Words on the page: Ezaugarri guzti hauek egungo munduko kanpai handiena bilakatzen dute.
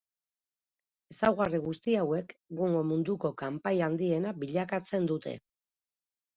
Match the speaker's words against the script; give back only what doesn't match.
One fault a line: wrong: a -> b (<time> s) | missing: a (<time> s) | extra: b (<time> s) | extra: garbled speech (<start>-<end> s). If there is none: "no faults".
no faults